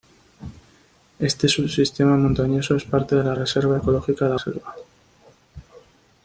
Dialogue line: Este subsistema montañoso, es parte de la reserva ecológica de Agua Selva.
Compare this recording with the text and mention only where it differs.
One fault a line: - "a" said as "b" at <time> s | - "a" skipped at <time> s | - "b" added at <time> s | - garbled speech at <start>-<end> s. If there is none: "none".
- "Agua" skipped at 4.3 s